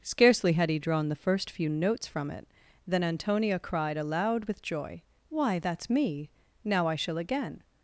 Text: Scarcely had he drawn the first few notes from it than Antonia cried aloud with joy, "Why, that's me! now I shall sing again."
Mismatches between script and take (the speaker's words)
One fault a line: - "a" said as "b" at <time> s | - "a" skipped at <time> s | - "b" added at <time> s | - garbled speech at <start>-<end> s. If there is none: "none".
- "sing" skipped at 7.2 s